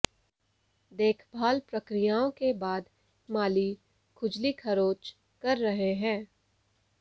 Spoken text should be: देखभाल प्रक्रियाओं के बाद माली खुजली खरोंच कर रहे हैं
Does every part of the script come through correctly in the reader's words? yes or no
yes